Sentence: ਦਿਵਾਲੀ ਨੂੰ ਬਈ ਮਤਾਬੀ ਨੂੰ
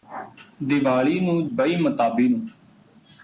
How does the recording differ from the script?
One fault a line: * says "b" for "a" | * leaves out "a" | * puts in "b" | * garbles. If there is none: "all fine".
all fine